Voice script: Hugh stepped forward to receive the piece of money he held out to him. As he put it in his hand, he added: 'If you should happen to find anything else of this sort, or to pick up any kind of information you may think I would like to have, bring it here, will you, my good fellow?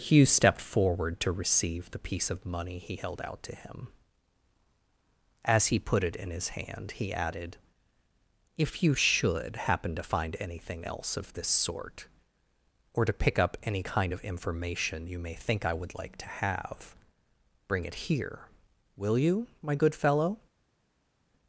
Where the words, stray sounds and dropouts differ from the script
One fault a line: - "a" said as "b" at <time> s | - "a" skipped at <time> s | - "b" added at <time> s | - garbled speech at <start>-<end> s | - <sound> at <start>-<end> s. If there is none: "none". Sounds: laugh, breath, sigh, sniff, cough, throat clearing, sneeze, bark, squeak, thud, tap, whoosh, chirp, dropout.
none